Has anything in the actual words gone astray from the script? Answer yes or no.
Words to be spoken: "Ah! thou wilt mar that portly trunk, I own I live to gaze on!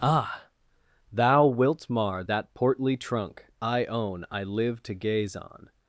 no